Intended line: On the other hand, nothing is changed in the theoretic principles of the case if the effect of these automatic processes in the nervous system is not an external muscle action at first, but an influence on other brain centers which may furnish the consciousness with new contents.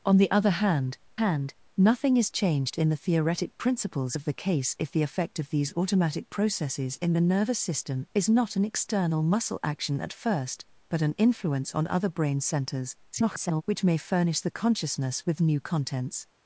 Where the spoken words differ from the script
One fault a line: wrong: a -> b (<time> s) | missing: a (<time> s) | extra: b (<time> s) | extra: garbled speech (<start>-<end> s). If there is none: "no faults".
extra: hand (1.2 s)
extra: garbled speech (13.1-13.6 s)